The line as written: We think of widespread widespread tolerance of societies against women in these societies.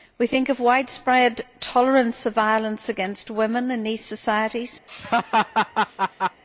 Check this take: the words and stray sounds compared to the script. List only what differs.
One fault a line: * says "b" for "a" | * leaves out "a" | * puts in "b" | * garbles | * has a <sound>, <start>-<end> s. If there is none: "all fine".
* leaves out "widespread"
* says "violence" for "societies"
* has a laugh, 4.9-6.4 s